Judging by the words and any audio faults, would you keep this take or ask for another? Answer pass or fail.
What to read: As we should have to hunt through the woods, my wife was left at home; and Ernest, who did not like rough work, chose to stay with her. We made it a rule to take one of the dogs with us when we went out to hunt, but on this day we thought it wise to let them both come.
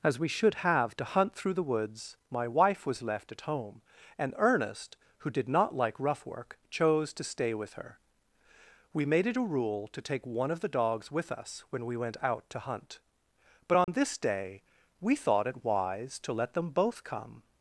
fail